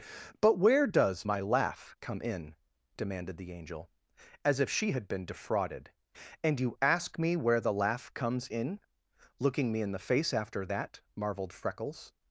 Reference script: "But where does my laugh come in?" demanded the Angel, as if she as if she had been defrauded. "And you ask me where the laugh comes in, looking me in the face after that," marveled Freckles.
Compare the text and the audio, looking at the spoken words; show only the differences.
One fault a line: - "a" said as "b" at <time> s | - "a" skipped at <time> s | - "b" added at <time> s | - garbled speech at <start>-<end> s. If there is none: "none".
- "as if she" skipped at 4.9 s